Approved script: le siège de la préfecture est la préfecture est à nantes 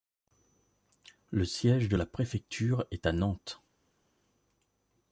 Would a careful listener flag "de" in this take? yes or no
no